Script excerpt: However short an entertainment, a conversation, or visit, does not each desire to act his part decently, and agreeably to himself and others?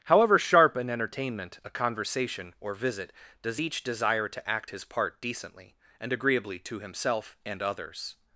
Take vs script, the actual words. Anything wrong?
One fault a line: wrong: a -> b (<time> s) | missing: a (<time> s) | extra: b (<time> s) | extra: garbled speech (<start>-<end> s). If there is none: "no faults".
wrong: short -> sharp (0.4 s)
missing: not (3.6 s)